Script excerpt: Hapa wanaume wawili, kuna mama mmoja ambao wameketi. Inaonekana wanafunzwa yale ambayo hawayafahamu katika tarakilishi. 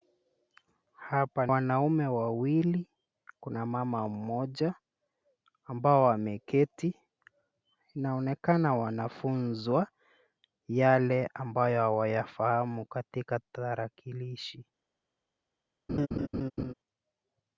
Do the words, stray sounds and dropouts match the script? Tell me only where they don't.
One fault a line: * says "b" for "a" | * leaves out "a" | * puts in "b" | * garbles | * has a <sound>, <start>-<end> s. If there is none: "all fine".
* has a laugh, 15.9-16.7 s